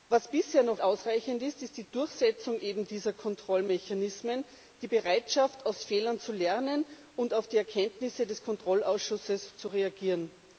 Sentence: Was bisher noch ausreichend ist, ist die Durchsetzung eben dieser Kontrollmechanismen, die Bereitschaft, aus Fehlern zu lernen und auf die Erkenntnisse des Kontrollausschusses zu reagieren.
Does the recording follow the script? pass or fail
pass